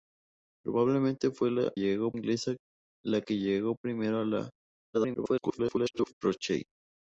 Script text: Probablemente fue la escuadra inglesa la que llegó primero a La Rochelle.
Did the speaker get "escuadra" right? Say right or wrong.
wrong